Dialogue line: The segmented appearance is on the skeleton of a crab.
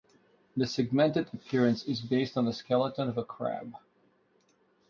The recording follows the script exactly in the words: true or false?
false